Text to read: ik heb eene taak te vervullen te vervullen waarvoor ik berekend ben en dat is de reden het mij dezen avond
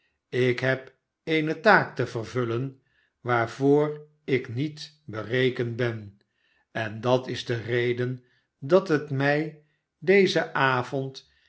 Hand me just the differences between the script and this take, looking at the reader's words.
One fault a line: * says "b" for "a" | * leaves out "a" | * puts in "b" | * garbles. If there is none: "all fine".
* leaves out "te vervullen"
* puts in "niet"
* puts in "dat"